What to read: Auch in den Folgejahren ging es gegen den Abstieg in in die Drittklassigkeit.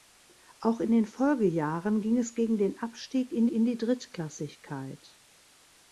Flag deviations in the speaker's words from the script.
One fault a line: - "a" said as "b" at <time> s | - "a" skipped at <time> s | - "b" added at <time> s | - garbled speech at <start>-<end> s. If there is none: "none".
none